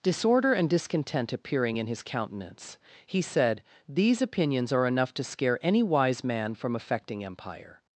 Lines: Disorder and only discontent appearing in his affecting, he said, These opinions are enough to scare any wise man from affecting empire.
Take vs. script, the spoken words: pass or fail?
fail